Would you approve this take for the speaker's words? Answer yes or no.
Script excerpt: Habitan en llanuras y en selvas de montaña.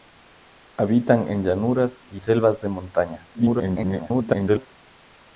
no